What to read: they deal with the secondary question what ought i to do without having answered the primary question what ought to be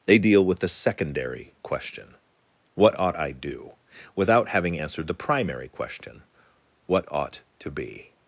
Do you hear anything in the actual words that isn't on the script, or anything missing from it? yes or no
yes